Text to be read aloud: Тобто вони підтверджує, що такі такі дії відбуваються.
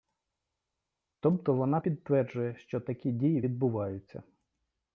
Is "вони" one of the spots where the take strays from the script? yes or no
yes